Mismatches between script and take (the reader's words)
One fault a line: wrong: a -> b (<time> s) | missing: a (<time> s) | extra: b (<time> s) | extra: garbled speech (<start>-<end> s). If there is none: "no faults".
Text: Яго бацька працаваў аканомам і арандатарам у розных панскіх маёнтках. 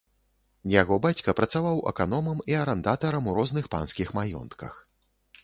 no faults